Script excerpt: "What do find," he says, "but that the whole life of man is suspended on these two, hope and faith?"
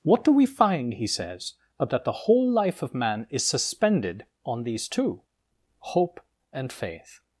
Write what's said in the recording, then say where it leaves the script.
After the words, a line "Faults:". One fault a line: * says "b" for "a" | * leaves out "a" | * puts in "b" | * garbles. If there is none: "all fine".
"What do we find," he says, "but that the whole life of man is suspended on these two, hope and faith?"
Faults:
* puts in "we"